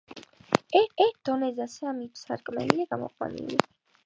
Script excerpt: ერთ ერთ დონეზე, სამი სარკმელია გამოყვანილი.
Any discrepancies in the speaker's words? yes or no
no